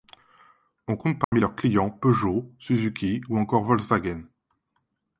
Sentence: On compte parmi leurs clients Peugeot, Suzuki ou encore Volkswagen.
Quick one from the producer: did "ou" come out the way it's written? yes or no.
yes